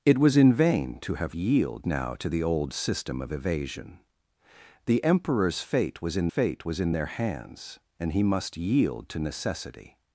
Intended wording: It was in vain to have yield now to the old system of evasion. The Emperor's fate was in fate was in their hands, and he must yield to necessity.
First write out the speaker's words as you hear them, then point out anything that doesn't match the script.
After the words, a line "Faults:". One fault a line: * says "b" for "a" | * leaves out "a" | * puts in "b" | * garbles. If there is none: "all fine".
It was in vain to have yield now to the old system of evasion. The Emperor's fate was in fate was in their hands, and he must yield to necessity.
Faults:
all fine